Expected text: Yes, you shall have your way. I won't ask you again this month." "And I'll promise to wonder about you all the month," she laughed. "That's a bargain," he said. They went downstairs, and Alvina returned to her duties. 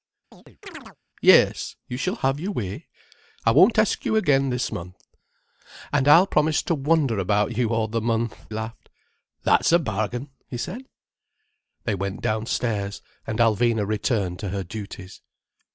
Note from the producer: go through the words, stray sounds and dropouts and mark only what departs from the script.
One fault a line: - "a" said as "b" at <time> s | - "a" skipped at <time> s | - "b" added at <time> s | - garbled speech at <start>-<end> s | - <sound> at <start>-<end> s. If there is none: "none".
- chirp at 0.3-1.0 s
- "she" skipped at 8.5 s